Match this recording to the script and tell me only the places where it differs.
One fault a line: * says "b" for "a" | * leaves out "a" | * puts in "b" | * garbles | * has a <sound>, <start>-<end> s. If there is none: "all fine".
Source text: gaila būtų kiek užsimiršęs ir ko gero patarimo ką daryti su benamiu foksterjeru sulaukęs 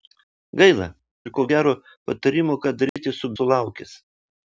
* leaves out "būtų kiek užsimiršęs"
* has a dropout, 2.9-3.0 s
* leaves out "benamiu foksterjeru"